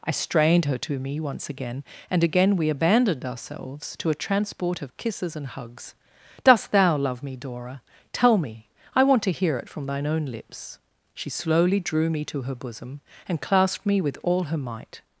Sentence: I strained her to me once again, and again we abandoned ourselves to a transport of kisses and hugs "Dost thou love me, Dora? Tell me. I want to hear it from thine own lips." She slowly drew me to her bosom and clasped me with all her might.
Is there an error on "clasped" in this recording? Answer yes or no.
no